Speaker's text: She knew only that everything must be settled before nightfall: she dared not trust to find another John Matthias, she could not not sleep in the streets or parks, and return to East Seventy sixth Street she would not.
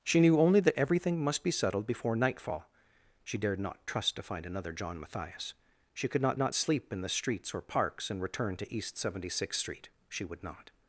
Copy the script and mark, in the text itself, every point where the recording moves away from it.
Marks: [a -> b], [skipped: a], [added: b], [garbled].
She knew only that everything must be settled before nightfall: she dared not trust to find another John Matthias, she could not not sleep in the streets or parks, and return to East Seventy sixth Street she would not.